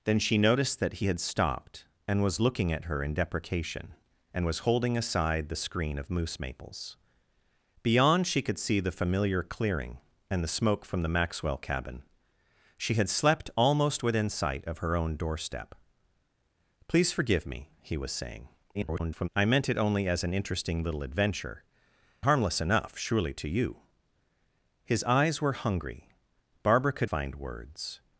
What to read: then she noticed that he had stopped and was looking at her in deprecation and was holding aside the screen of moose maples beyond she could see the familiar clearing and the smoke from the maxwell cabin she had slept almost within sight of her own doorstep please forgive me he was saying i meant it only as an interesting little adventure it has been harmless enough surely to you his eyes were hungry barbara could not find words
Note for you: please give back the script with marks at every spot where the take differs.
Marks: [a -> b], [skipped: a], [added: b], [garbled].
then she noticed that he had stopped and was looking at her in deprecation and was holding aside the screen of moose maples beyond she could see the familiar clearing and the smoke from the maxwell cabin she had slept almost within sight of her own doorstep please forgive me he was saying [garbled] i meant it only as an interesting little adventure [skipped: it has been] harmless enough surely to you his eyes were hungry barbara could [skipped: not] find words